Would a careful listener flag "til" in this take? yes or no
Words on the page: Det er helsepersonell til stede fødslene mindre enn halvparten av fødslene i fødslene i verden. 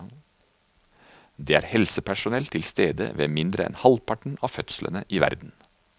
no